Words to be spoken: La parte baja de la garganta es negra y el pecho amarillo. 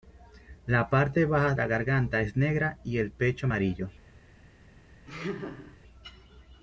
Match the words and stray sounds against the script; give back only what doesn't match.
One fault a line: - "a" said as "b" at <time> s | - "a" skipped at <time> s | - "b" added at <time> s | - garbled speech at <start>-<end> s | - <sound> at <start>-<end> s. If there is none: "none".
- "de" skipped at 1.5 s
- laugh at 5.1-5.8 s